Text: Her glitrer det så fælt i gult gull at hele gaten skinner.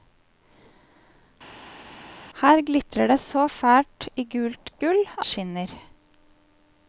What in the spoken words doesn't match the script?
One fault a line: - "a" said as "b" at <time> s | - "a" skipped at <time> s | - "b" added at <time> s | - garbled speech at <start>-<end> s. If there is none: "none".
- "at hele gaten" skipped at 5.0 s